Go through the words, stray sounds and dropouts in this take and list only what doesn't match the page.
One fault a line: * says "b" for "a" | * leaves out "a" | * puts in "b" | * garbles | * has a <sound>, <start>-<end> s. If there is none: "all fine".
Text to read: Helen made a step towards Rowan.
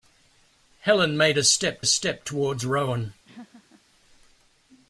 * puts in "step"
* has a laugh, 3.2-3.8 s